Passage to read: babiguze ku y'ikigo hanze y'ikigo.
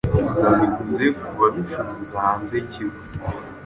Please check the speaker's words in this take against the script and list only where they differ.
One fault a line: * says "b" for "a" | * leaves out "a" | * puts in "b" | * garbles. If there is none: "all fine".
* says "babicuruza" for "y'ikigo"